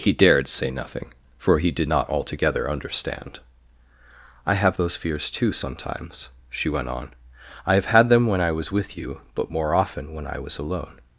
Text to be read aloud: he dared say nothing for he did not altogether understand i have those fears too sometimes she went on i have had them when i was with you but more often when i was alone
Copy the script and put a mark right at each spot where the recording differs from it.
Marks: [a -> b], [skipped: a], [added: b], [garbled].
he dared say nothing for he did not altogether understand i have those fears too sometimes she went on i have had them when i was with you but more often when i was alone